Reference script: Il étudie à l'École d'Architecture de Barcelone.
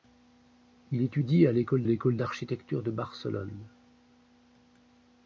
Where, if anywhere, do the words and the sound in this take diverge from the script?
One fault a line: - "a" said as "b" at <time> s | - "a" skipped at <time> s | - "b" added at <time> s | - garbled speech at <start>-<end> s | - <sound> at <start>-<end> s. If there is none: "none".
- "l'École" added at 1.8 s